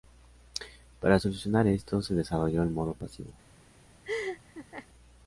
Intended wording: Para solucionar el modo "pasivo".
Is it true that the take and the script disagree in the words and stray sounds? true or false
true